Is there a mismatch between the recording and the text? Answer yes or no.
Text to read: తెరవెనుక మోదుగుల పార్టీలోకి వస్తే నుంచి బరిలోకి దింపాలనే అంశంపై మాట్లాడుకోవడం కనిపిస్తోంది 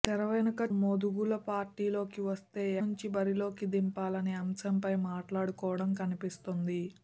no